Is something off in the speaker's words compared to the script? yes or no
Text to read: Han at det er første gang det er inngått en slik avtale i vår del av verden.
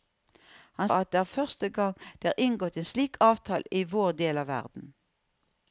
no